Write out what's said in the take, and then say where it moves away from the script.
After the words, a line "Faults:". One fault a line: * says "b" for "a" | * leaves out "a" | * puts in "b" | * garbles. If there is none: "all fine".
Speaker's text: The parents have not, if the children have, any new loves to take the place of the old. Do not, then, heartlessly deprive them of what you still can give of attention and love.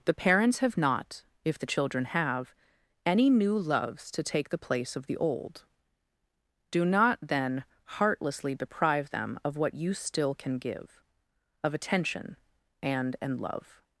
The parents have not, if the children have, any new loves to take the place of the old. Do not, then, heartlessly deprive them of what you still can give of attention and and love.
Faults:
* puts in "and"